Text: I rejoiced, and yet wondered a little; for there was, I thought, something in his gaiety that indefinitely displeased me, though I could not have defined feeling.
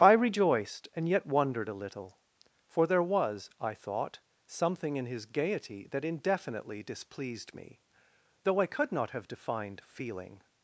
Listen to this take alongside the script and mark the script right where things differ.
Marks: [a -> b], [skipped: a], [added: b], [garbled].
I rejoiced, and yet wondered a little; for there was, I thought, something in his gaiety that indefinitely displeased me, though I could not have defined feeling.